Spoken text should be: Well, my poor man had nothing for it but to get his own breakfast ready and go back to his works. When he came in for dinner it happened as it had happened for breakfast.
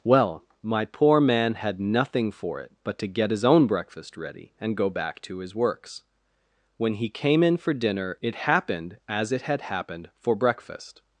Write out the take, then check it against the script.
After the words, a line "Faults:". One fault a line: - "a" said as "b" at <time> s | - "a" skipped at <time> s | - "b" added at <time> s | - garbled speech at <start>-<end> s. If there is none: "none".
Well, my poor man had nothing for it but to get his own breakfast ready and go back to his works. When he came in for dinner it happened as it had happened for breakfast.
Faults:
none